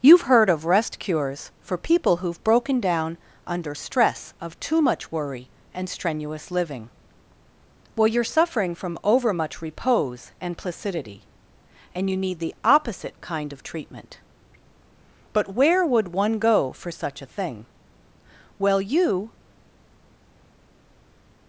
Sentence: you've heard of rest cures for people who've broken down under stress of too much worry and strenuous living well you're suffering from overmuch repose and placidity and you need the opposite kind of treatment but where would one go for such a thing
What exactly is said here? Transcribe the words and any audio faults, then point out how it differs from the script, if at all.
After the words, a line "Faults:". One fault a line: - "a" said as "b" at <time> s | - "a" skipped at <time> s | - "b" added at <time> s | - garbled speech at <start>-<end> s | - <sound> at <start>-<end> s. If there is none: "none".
you've heard of rest cures for people who've broken down under stress of too much worry and strenuous living well you're suffering from overmuch repose and placidity and you need the opposite kind of treatment but where would one go for such a thing well you
Faults:
- "well you" added at 18.6 s